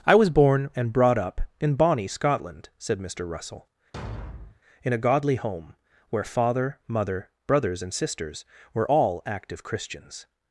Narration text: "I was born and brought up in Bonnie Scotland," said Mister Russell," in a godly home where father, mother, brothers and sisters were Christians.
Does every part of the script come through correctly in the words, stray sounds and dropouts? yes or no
no